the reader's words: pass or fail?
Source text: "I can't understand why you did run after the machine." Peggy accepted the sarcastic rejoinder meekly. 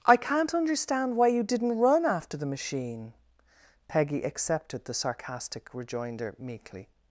fail